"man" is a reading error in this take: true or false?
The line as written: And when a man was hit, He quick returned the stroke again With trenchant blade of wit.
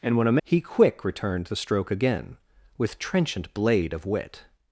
true